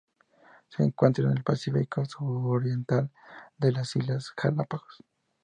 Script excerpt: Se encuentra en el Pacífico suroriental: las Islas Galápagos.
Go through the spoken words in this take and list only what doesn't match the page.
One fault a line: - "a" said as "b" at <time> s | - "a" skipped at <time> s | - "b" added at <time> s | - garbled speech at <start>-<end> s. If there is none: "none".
none